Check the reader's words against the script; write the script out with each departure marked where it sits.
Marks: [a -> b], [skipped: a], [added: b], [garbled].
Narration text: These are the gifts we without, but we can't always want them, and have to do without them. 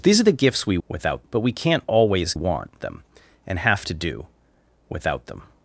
These are the gifts we without, but we can't always want them, and have to do without them.